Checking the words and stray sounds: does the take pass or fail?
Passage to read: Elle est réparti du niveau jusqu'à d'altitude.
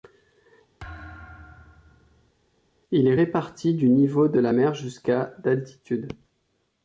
fail